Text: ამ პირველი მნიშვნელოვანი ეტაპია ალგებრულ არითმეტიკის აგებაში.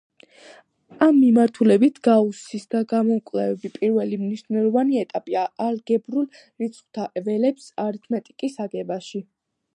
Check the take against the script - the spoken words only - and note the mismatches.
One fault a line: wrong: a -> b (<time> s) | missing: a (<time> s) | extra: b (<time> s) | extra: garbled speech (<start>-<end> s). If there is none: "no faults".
extra: მიმართულებით გაუსის გამოკვლევები (1.2 s)
extra: რიცხვთა ველების (6.4 s)